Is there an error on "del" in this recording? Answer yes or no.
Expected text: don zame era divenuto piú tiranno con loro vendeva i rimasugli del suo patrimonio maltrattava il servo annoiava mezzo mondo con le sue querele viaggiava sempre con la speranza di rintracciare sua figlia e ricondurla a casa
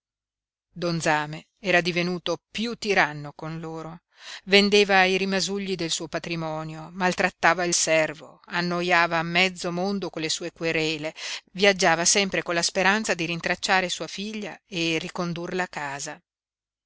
no